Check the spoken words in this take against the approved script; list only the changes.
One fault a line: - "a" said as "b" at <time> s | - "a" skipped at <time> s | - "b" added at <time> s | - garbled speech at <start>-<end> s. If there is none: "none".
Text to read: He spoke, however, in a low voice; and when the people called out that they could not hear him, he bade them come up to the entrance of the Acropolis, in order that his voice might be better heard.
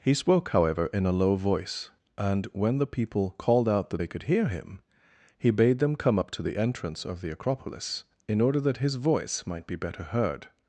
- "not" skipped at 4.2 s